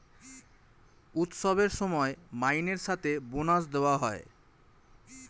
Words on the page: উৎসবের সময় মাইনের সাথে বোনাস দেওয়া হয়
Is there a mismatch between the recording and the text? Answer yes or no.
no